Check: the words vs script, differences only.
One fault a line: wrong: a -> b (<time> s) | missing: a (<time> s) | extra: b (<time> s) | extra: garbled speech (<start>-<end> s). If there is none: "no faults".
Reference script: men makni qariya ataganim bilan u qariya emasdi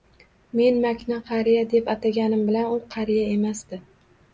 extra: deb (1.8 s)